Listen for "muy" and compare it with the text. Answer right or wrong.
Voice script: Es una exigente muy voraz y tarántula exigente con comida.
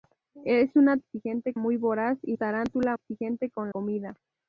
right